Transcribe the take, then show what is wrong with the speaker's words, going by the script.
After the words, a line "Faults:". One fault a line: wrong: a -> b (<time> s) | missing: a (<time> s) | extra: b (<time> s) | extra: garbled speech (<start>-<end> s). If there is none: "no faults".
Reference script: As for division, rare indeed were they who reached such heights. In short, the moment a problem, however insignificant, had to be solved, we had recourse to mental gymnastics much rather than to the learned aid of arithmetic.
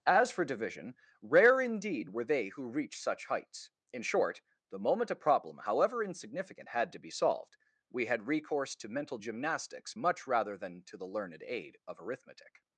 As for division, rare indeed were they who reached such heights. In short, the moment a problem, however insignificant, had to be solved, we had recourse to mental gymnastics much rather than to the learned aid of arithmetic.
Faults:
no faults